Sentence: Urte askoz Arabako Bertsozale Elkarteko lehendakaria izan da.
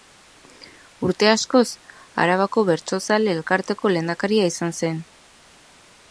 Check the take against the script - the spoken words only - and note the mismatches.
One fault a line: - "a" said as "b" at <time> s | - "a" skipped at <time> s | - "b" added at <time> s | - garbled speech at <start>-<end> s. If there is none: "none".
- "da" said as "zen" at 4.8 s